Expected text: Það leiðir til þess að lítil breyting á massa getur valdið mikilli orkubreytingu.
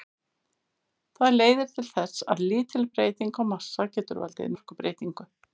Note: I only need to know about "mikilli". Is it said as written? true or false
false